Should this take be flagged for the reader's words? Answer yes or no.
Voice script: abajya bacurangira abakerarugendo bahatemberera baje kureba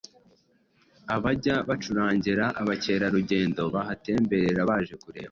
no